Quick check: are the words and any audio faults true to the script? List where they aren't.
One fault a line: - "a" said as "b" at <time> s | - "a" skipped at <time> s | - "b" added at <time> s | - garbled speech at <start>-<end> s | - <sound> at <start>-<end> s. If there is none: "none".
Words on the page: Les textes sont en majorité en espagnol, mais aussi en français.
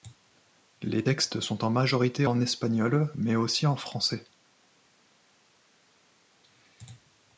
none